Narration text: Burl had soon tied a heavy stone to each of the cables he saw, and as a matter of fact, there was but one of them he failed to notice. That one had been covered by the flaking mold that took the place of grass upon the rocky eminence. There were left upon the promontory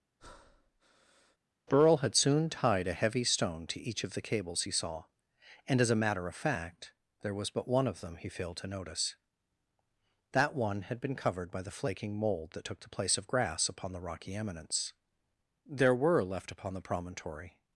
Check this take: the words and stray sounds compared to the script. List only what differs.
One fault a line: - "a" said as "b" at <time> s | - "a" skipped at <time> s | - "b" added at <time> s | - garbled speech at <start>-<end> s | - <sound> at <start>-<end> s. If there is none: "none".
- breath at 0.2-1.4 s